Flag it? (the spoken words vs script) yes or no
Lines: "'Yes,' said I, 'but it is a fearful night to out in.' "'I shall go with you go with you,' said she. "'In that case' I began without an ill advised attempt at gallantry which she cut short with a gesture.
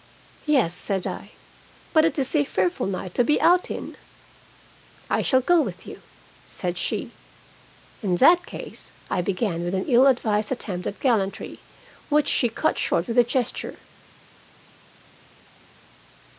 yes